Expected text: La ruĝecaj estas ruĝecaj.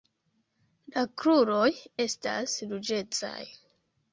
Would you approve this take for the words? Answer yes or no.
no